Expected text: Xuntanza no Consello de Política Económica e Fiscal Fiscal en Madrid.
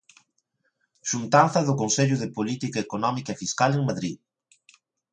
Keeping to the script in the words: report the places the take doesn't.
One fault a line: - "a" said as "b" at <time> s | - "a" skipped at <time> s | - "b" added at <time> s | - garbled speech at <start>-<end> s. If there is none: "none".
- "no" said as "do" at 1.7 s
- "Fiscal" skipped at 3.7 s